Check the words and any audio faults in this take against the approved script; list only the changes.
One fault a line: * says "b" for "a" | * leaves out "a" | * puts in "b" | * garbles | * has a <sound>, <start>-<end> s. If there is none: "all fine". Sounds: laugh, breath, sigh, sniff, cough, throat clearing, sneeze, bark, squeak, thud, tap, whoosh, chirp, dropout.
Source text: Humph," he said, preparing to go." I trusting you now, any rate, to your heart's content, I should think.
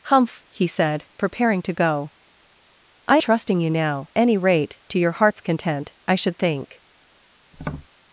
* has a tap, 7.5-7.9 s